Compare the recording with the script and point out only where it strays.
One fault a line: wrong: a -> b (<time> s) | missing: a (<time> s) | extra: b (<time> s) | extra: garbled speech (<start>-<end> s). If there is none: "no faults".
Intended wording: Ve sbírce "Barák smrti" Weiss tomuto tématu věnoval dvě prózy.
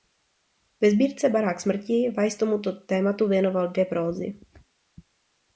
no faults